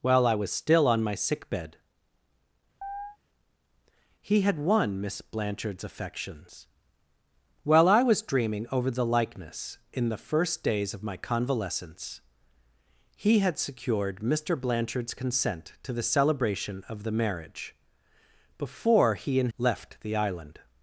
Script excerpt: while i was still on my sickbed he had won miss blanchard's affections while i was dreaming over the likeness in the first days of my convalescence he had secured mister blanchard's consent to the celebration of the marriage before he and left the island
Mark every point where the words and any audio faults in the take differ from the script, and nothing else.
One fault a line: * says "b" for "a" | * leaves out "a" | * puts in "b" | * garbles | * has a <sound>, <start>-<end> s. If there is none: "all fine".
* has a chirp, 2.8-3.2 s